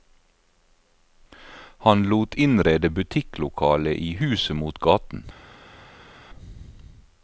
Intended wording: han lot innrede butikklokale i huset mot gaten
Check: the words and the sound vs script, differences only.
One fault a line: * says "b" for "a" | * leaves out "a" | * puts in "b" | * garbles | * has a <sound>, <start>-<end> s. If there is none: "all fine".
all fine